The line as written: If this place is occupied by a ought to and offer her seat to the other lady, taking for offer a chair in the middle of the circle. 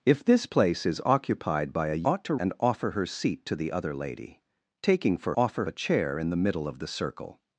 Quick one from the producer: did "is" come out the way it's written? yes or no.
yes